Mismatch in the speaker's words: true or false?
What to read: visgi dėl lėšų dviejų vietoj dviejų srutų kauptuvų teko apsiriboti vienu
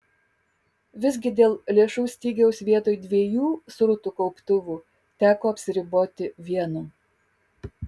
true